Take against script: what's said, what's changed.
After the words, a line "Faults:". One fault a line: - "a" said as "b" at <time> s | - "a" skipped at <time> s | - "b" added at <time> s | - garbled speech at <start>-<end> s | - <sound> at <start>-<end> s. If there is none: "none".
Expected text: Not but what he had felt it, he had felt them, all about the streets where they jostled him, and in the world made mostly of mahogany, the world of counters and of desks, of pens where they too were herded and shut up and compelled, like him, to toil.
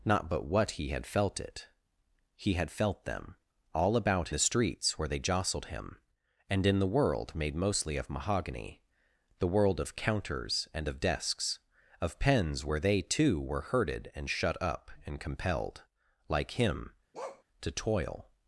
Not but what he had felt it, he had felt them, all about the streets where they jostled him, and in the world made mostly of mahogany, the world of counters and of desks, of pens where they too were herded and shut up and compelled, like him, to toil.
Faults:
- bark at 17.1-17.4 s